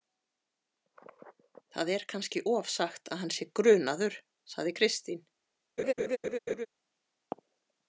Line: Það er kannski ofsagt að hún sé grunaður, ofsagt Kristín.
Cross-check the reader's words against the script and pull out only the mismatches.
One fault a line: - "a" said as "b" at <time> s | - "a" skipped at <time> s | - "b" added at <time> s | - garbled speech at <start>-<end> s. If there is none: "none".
- "hún" said as "hann" at 3.2 s
- "ofsagt" said as "sagði" at 4.5 s